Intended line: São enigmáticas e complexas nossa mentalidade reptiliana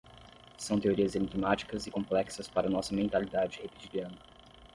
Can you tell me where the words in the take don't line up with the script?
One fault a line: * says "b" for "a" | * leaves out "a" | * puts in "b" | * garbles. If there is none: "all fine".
* puts in "teorias"
* puts in "para"